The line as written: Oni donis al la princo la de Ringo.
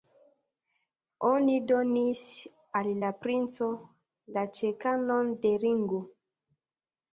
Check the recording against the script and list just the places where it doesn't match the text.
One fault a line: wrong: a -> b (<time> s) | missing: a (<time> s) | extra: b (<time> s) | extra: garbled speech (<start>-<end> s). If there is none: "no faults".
extra: ĉekanon (4.6 s)